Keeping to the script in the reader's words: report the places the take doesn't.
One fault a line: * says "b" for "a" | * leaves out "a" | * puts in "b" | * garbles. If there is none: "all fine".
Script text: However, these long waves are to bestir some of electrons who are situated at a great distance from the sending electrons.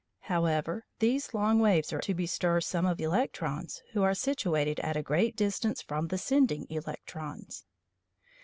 all fine